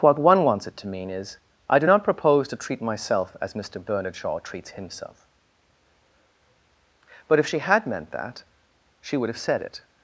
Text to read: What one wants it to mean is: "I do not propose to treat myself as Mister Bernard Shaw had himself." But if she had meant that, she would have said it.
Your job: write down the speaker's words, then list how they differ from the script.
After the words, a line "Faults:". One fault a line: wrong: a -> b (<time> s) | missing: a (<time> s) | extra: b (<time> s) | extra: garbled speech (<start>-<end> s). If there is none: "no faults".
What one wants it to mean is: "I do not propose to treat myself as Mister Bernard Shaw treats himself." But if she had meant that, she would have said it.
Faults:
wrong: had -> treats (4.4 s)